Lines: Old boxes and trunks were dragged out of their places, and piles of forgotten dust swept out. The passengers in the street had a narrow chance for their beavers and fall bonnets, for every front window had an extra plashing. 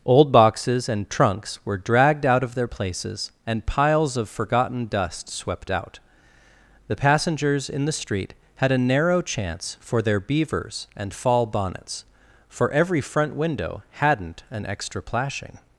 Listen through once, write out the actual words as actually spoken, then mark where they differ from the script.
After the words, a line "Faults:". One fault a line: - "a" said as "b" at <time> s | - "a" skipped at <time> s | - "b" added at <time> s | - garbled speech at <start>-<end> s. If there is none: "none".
Old boxes and trunks were dragged out of their places, and piles of forgotten dust swept out. The passengers in the street had a narrow chance for their beavers and fall bonnets, for every front window hadn't an extra plashing.
Faults:
- "had" said as "hadn't" at 13.9 s